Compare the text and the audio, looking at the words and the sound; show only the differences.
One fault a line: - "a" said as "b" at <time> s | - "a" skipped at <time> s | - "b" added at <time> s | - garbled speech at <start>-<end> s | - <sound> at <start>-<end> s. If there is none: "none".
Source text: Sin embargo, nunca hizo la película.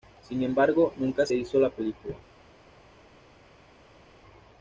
none